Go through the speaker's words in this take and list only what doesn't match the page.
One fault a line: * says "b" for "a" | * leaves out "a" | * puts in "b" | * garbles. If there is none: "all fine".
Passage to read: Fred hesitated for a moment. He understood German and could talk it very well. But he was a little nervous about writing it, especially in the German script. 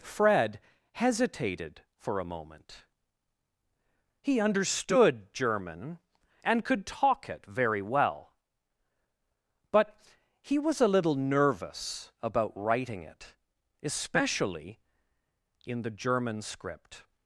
all fine